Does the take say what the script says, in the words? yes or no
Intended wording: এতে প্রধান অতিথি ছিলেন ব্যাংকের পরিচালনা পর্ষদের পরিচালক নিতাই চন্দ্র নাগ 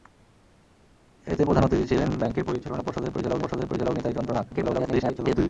no